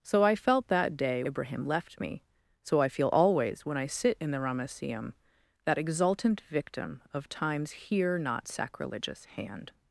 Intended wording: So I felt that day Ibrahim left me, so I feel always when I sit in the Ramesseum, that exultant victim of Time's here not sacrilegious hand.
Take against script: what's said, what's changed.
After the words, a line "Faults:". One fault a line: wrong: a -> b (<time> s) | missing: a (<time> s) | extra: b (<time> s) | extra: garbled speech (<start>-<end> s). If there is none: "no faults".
So I felt that day Ibrahim left me, so I feel always when I sit in the Ramesseum, that exultant victim of Time's here not sacrilegious hand.
Faults:
no faults